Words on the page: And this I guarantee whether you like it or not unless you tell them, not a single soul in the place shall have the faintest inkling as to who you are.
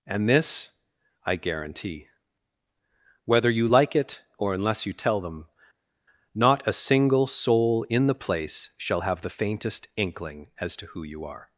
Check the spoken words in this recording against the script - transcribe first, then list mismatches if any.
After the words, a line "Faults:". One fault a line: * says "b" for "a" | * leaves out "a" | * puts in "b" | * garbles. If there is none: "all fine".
And this I guarantee whether you like it or unless you tell them, not a single soul in the place shall have the faintest inkling as to who you are.
Faults:
* leaves out "not"